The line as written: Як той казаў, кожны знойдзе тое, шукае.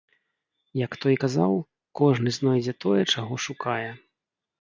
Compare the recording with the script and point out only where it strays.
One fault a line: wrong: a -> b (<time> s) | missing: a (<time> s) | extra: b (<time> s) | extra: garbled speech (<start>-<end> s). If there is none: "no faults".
extra: чаго (3.1 s)